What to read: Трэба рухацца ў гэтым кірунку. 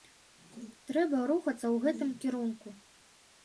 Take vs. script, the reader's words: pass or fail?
pass